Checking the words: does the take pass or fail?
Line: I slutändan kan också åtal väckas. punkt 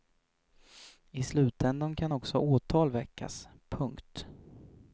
pass